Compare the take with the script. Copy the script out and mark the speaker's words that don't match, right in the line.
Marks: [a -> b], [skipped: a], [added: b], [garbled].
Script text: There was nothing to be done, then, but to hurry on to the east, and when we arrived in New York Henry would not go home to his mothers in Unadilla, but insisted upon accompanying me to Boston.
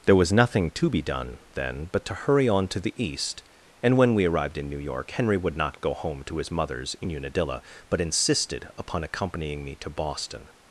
There was nothing to be done, then, but to hurry on to the east, and when we arrived in New York Henry would not go home to his mothers in Unadilla, but insisted upon accompanying me to Boston.